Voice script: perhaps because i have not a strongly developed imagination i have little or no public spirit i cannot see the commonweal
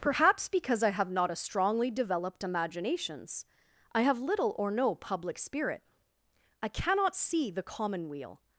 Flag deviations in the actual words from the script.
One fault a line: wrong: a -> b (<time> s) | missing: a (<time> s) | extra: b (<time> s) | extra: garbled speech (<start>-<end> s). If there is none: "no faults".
wrong: imagination -> imaginations (2.4 s)